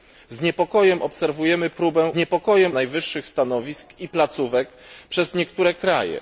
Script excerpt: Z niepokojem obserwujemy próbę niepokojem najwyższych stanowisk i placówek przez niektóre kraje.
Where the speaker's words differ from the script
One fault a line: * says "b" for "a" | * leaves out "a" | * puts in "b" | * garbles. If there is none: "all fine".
all fine